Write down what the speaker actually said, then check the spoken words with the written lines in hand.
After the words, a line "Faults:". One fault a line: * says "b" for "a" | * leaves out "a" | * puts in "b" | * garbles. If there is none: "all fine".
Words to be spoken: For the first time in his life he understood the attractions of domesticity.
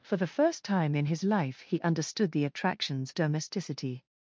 For the first time in his life he understood the attractions domesticity.
Faults:
* leaves out "of"